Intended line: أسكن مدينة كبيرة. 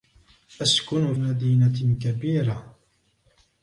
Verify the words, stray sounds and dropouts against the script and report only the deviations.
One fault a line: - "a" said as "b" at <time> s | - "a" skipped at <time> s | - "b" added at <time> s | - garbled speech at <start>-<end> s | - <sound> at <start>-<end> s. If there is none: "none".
none